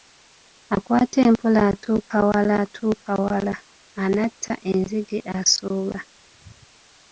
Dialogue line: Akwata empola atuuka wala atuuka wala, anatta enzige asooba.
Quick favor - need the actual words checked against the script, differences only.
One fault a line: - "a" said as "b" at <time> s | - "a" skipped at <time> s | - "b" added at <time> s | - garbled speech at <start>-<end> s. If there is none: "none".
none